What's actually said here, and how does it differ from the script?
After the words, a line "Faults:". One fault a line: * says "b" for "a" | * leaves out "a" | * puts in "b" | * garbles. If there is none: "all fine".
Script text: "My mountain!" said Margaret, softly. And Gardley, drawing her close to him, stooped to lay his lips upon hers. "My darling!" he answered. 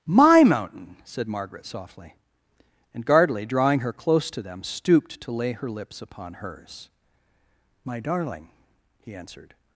"My mountain!" said Margaret, softly. And Gardley, drawing her close to them, stooped to lay her lips upon hers. "My darling!" he answered.
Faults:
* says "them" for "him"
* says "her" for "his"